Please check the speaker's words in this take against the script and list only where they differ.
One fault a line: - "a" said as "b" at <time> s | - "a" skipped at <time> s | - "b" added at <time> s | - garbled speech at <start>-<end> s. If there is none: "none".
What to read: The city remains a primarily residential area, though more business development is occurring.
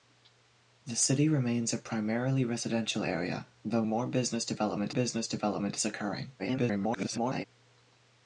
- "business development" added at 4.9 s
- garbled speech at 6.4-7.4 s